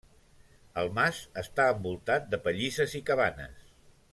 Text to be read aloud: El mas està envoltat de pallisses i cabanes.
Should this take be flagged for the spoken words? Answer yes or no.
no